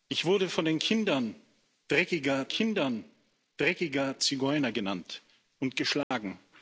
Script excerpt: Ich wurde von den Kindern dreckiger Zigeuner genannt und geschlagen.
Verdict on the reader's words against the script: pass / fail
fail